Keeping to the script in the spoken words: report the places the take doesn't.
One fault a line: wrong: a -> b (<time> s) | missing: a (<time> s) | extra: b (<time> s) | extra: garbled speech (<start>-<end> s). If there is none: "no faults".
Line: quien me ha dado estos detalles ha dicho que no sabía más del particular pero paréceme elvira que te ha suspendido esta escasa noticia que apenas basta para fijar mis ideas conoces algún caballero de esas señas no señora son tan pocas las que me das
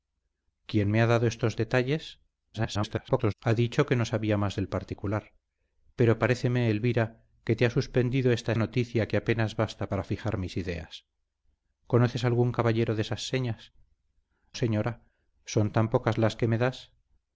extra: garbled speech (2.5-3.3 s)
missing: escasa (8.5 s)
missing: no (13.7 s)